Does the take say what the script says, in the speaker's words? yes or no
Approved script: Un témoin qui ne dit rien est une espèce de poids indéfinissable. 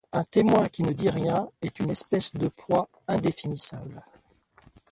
yes